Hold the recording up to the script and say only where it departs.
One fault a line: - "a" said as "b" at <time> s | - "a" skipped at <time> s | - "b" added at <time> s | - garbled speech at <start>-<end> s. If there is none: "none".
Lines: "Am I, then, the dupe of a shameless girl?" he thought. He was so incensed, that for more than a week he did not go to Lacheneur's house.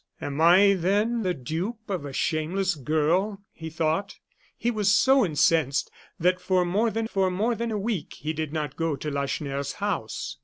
- "for more than" added at 7.1 s